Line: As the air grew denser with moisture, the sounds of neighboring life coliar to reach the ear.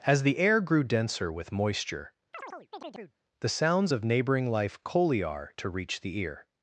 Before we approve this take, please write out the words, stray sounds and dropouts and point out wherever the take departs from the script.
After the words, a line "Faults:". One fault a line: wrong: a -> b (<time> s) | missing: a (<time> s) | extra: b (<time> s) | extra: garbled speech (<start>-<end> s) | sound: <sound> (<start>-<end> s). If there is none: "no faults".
As the air grew denser with moisture, the sounds of neighboring life coliar to reach the ear.
Faults:
sound: chirp (2.3-3.2 s)